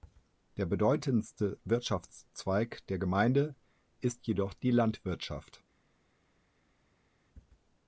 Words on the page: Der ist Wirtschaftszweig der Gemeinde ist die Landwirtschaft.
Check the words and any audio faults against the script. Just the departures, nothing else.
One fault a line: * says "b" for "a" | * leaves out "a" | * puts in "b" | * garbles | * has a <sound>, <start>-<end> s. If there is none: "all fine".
* says "bedeutendste" for "ist"
* puts in "jedoch"